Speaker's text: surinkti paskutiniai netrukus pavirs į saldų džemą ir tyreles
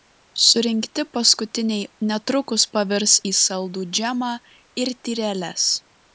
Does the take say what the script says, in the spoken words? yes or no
yes